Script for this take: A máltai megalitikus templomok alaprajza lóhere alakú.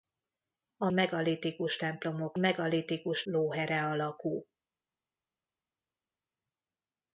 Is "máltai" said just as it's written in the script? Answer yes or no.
no